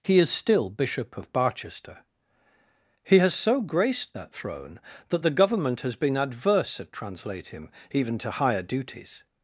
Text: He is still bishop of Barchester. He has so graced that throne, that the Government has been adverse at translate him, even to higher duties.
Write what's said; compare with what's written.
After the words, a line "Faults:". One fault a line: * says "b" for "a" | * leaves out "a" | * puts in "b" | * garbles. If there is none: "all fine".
He is still bishop of Barchester. He has so graced that throne, that the Government has been adverse at translate him, even to higher duties.
Faults:
all fine